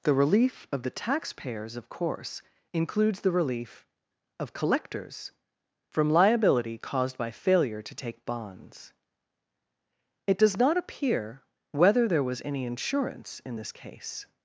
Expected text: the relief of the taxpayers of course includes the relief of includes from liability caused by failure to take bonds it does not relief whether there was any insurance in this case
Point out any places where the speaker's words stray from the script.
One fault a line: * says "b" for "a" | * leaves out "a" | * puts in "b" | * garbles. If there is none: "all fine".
* says "collectors" for "includes"
* says "appear" for "relief"